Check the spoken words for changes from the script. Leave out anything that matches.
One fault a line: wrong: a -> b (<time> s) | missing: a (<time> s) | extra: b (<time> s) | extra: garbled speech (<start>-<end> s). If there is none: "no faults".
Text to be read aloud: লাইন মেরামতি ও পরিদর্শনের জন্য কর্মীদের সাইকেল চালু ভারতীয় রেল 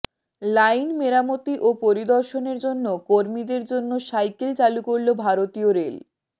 extra: জন্য (3.7 s)
extra: করল (4.9 s)